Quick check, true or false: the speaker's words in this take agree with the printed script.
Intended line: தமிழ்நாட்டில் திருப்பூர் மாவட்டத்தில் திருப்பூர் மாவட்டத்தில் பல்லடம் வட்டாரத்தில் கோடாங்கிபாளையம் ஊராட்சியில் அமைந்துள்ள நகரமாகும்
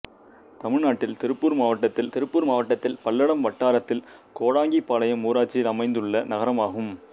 true